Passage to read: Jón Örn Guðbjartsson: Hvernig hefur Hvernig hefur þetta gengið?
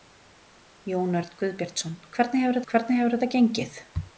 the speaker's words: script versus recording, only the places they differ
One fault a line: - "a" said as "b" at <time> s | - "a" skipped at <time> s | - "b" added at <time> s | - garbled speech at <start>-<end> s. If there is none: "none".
none